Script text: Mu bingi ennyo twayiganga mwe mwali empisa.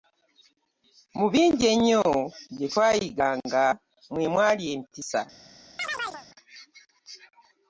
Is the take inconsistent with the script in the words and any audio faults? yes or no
yes